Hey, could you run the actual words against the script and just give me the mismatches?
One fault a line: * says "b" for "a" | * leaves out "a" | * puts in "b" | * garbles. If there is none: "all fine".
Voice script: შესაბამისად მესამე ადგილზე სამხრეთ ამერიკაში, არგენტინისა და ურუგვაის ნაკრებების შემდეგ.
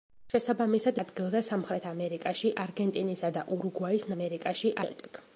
* leaves out "მესამე"
* says "ამერიკაში" for "ნაკრებების"